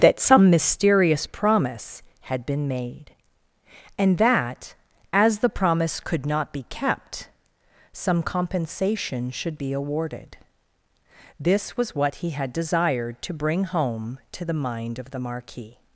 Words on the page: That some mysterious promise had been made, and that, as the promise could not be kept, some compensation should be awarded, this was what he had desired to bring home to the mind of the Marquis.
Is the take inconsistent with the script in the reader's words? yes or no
no